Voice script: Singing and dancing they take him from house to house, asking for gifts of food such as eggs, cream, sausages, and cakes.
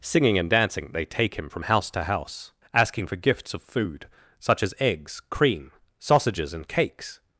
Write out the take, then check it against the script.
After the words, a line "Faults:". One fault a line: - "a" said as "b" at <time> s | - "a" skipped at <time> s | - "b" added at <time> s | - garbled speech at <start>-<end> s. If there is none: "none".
Singing and dancing they take him from house to house, asking for gifts of food such as eggs, cream, sausages, and cakes.
Faults:
none